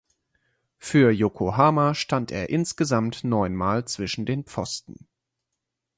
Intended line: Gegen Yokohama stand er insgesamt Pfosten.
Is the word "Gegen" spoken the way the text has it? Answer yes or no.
no